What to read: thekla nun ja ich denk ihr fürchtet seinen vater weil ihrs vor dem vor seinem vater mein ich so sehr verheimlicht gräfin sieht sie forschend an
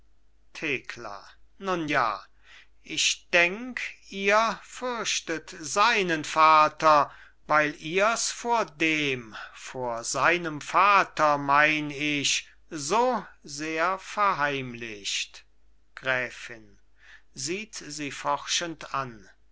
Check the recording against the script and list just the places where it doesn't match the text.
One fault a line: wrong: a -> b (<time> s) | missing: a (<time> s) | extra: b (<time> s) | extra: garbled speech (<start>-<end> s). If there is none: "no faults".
no faults